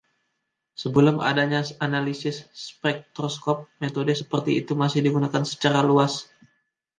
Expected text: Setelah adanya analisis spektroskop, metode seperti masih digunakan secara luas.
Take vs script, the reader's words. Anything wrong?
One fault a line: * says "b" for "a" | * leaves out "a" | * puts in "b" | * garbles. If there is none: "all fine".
* says "Sebelum" for "Setelah"
* puts in "itu"